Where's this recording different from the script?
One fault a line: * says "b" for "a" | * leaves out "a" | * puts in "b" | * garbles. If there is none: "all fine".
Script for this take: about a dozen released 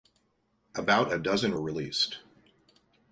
all fine